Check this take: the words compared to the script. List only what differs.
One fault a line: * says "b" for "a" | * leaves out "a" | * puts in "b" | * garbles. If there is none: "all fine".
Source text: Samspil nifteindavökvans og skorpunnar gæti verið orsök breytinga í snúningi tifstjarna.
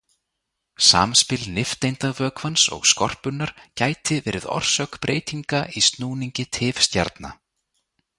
all fine